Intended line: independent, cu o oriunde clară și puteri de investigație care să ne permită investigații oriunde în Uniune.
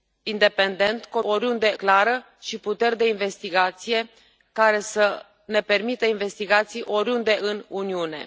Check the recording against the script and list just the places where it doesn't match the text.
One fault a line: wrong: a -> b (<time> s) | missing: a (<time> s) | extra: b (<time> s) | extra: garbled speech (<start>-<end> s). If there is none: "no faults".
no faults